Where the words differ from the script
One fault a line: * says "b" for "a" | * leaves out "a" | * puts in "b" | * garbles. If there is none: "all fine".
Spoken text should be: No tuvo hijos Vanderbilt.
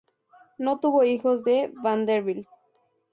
* puts in "de"